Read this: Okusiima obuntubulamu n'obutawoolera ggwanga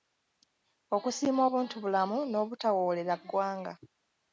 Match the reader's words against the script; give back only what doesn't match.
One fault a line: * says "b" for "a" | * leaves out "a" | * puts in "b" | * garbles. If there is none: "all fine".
all fine